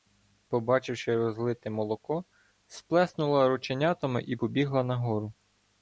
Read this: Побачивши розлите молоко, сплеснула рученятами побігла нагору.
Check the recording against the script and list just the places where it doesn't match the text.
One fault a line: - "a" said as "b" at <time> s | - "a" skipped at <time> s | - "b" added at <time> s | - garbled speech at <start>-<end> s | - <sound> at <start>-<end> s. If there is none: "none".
- "і" added at 4.3 s